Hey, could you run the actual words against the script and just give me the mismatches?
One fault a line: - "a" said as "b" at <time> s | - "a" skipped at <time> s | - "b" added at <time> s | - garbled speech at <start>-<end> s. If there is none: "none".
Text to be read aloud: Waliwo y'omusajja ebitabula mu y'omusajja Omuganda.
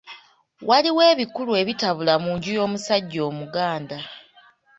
- "y'omusajja" said as "ebikulu" at 1.1 s
- "nju" added at 2.4 s